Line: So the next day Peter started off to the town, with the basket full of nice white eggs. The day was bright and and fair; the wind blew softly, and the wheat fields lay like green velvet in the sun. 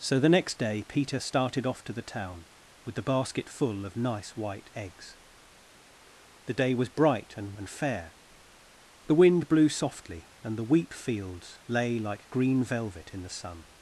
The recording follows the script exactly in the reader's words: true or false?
true